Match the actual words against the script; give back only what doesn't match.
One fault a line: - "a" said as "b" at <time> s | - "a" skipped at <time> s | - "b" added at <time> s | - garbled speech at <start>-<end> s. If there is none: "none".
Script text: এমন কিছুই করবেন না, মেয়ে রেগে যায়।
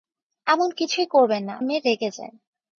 none